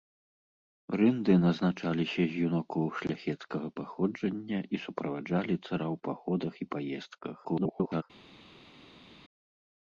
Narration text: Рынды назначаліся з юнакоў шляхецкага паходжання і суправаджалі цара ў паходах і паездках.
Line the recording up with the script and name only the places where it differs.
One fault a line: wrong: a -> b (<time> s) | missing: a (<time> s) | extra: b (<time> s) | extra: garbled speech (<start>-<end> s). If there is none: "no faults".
extra: garbled speech (7.4-8.0 s)